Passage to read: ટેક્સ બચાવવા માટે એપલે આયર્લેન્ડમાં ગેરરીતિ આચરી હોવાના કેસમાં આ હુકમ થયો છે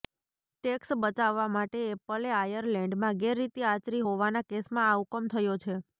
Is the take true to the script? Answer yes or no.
yes